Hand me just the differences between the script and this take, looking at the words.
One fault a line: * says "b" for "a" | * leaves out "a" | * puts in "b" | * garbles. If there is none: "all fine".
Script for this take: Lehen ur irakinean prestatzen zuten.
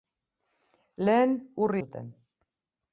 * leaves out "irakinean prestatzen"